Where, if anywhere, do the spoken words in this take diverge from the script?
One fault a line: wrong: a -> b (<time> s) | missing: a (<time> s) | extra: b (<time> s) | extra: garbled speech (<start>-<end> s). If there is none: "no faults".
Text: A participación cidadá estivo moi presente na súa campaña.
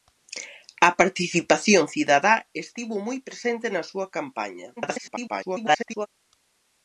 extra: garbled speech (4.8-6.1 s)